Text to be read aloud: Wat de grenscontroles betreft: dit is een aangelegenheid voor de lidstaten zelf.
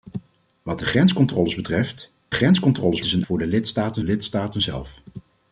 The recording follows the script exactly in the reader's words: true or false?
false